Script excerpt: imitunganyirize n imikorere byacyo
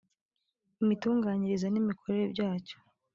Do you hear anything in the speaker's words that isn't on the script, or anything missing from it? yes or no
no